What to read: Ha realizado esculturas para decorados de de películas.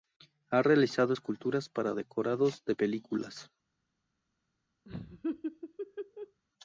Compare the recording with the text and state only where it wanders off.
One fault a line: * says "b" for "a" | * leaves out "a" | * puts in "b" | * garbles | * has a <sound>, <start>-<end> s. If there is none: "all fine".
* leaves out "de"
* has a laugh, 4.8-6.4 s